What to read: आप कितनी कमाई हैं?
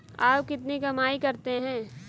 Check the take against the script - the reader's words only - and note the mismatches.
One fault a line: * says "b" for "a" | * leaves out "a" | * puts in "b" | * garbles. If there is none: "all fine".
* puts in "करते"